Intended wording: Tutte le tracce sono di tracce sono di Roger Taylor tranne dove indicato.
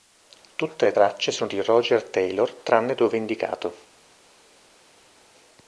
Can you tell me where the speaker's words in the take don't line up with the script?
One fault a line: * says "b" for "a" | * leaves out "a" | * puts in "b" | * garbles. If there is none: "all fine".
* leaves out "tracce sono di"